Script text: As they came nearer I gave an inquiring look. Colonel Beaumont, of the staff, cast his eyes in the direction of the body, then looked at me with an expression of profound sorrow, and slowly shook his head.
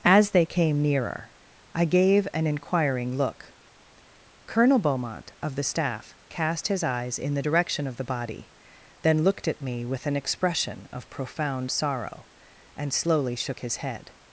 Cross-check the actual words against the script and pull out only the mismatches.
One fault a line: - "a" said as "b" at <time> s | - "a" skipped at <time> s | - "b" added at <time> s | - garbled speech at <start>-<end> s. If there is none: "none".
none